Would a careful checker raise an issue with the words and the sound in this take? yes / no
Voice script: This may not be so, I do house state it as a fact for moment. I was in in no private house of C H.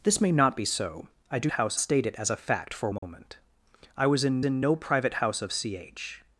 yes